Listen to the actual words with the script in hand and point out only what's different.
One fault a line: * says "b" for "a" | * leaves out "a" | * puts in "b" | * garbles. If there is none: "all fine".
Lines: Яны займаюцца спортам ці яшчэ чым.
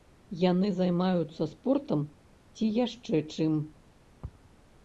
all fine